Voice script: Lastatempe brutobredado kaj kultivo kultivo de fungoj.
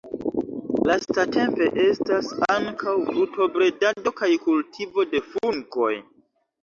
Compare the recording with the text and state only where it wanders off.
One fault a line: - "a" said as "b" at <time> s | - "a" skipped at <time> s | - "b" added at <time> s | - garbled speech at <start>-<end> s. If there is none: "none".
- "estas ankaŭ" added at 1.8 s
- "kultivo" skipped at 5.1 s